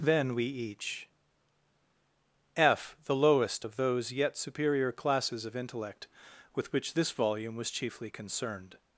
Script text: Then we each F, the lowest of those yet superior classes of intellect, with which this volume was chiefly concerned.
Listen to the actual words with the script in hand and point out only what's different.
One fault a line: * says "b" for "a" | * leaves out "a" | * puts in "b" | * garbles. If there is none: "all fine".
all fine